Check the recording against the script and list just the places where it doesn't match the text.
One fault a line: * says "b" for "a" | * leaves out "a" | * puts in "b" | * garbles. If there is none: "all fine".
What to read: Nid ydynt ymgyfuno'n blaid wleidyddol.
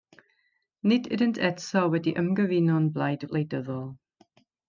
* puts in "eto wedi"